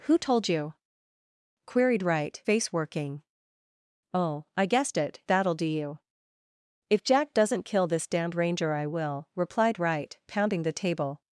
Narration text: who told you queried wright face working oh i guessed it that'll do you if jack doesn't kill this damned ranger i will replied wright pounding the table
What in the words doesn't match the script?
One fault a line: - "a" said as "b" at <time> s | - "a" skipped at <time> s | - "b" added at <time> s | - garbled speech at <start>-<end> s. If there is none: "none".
none